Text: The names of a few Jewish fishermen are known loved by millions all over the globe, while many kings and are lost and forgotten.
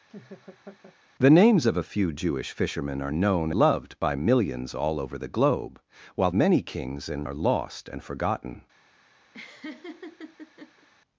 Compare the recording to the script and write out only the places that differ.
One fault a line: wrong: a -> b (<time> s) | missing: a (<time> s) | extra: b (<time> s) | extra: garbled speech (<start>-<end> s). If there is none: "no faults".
no faults